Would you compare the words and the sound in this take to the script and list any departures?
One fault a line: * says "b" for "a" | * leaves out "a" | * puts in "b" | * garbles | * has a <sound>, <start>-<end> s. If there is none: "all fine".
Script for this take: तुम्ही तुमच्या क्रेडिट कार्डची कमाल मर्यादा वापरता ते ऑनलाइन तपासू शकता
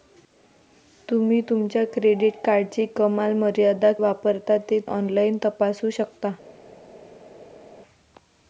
all fine